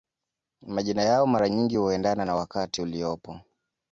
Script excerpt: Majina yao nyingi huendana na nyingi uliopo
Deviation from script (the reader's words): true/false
true